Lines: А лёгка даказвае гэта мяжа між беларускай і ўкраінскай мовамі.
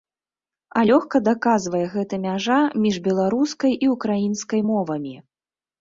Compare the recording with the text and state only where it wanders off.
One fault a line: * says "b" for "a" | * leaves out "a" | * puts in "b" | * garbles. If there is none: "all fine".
all fine